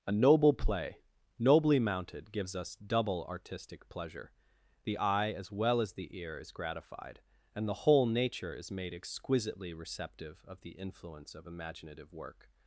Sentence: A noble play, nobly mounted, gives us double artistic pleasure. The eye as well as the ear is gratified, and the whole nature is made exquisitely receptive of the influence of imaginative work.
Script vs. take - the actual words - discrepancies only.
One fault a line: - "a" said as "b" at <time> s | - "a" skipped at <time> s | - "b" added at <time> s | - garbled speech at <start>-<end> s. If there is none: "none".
none